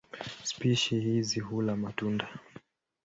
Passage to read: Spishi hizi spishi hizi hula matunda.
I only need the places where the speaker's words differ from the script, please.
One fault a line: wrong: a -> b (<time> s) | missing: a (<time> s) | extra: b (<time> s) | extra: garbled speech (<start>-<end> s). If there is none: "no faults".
missing: spishi hizi (1.4 s)